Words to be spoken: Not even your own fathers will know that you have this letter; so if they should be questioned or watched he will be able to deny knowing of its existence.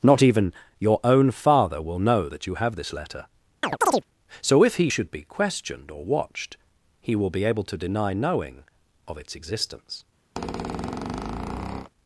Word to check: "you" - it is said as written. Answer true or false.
true